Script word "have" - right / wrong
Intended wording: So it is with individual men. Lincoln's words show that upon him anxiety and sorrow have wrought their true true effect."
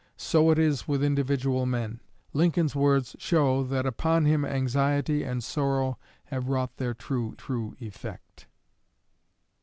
right